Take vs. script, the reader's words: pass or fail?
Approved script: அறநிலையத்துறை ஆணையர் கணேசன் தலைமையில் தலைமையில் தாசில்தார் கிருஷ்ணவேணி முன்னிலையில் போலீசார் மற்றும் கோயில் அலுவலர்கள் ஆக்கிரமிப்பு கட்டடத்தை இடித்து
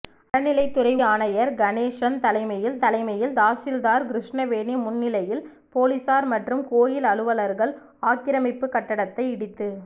pass